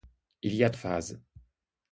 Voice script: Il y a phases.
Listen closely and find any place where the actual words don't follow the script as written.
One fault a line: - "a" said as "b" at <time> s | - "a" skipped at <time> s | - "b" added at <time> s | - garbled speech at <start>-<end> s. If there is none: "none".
none